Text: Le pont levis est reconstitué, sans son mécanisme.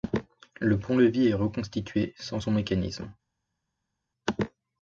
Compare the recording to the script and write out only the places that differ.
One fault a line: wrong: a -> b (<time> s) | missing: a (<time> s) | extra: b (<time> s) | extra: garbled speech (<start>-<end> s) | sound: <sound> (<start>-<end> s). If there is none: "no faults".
no faults